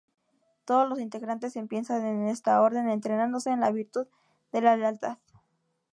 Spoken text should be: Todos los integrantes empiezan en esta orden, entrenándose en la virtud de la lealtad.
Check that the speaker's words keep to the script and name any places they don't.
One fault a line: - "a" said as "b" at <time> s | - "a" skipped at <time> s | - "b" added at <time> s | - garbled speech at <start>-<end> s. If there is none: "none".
none